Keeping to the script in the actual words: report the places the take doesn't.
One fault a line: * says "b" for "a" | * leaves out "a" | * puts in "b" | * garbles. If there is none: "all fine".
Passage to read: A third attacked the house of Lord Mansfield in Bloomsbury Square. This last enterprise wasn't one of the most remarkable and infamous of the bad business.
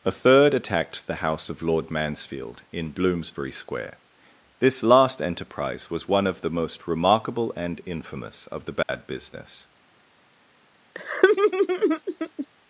* says "was" for "wasn't"